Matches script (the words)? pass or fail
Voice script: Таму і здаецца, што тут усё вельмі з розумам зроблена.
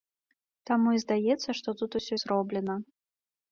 fail